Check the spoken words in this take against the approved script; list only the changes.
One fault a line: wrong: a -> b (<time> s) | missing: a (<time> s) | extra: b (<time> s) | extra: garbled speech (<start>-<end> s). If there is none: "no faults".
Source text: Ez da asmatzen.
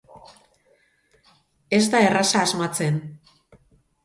extra: erraza (2.1 s)